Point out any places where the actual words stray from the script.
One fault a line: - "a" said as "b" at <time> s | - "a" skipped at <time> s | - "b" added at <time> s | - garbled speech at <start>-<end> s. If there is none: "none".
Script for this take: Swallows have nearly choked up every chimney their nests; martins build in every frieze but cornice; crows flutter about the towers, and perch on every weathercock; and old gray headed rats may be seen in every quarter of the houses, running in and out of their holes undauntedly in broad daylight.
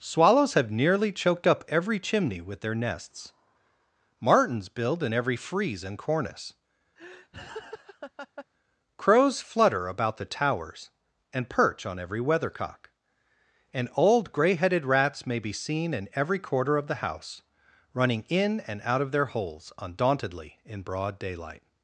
- "with" added at 2.4 s
- "but" said as "and" at 5.8 s
- "houses" said as "house" at 17.0 s